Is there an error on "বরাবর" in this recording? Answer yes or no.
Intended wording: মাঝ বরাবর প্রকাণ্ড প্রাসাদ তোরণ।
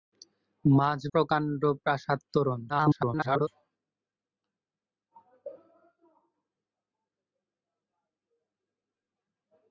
yes